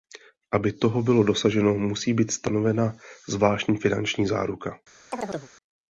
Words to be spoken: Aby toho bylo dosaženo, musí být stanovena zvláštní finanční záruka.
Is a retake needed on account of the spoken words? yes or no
no